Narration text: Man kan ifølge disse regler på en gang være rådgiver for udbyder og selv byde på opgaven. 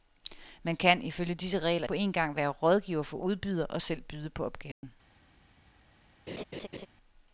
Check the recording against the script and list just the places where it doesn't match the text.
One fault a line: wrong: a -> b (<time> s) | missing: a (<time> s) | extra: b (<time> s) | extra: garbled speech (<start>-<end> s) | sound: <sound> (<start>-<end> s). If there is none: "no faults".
sound: dropout (4.7-4.8 s)
sound: laugh (6.3-6.9 s)